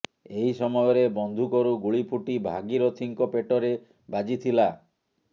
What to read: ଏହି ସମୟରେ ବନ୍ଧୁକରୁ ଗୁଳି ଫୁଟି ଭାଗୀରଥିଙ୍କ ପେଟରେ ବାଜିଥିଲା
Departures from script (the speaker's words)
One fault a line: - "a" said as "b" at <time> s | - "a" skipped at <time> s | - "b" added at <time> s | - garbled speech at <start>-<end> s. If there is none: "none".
none